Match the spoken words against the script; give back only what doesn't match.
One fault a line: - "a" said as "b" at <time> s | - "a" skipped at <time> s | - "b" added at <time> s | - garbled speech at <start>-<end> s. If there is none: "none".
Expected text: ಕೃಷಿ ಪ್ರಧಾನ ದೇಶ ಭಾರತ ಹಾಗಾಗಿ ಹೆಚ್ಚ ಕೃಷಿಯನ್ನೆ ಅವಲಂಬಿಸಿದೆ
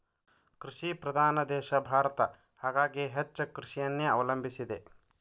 none